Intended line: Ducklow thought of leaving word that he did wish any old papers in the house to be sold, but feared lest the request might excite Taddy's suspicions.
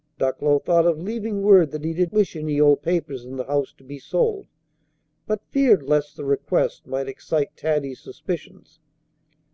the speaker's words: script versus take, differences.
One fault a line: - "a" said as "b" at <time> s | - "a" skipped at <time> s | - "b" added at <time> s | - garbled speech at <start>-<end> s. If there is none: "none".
none